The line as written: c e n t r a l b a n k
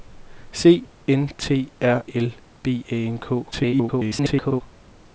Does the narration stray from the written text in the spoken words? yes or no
yes